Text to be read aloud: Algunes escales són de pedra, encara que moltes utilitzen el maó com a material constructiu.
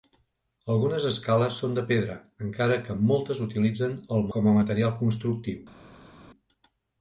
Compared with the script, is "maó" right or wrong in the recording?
wrong